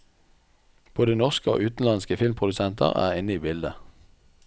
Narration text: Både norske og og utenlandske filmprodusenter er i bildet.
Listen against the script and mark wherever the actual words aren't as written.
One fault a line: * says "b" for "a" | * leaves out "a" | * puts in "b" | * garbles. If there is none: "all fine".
* leaves out "og"
* puts in "inne"